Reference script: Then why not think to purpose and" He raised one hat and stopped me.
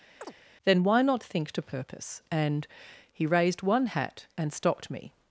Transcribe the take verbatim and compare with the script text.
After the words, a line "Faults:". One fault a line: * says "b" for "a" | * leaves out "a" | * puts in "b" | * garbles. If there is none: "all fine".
Then why not think to purpose and" He raised one hat and stopped me.
Faults:
all fine